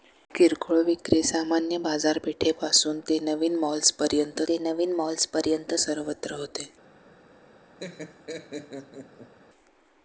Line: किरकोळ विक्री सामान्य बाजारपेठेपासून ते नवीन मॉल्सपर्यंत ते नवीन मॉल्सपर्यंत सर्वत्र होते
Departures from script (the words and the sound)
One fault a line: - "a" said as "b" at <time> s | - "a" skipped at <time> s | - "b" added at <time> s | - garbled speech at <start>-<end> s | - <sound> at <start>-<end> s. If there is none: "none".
- laugh at 7.8-9.3 s